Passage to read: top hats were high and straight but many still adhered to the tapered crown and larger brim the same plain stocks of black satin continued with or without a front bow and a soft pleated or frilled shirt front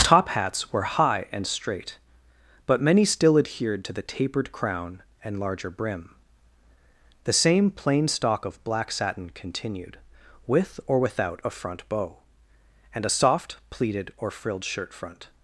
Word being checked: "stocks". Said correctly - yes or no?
no